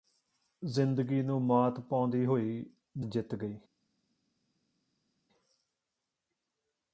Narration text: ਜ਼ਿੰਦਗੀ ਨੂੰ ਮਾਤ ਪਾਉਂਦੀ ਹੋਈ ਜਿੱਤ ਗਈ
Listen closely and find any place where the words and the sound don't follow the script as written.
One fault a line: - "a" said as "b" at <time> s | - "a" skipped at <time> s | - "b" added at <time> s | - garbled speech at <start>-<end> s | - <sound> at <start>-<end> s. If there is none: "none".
none